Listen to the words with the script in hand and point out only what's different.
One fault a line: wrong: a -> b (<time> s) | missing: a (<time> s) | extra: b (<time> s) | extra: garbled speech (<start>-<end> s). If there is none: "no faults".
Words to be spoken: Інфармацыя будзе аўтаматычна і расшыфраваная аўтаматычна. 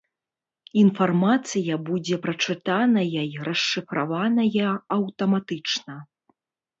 wrong: аўтаматычна -> прачытаная (2.2 s)